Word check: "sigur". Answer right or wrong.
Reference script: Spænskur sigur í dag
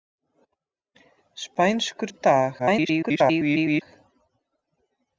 wrong